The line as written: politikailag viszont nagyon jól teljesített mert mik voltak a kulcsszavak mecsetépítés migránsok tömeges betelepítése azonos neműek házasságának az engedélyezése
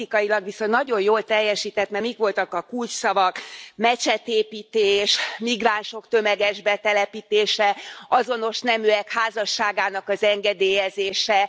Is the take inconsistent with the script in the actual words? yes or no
no